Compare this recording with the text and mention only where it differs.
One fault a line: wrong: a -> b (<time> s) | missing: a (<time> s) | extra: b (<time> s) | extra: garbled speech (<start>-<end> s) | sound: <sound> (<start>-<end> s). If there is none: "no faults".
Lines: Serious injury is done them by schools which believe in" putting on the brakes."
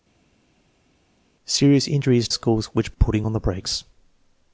missing: done them by (2.3 s)
missing: believe in (2.9 s)